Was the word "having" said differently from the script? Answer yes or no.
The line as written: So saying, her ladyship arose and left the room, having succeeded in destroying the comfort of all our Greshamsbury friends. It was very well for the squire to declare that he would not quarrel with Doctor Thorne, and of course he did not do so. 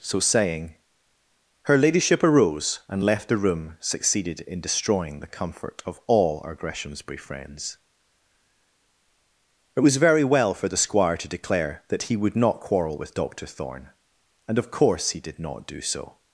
yes